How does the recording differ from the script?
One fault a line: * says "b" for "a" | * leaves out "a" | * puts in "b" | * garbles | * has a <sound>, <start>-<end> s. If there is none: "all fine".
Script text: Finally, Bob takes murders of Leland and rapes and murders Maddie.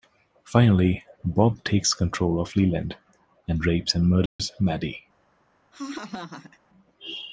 * says "control" for "murders"
* has a dropout, 4.3-4.4 s
* has a laugh, 5.7-6.6 s